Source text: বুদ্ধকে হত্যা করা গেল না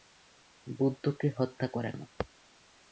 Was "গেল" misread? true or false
true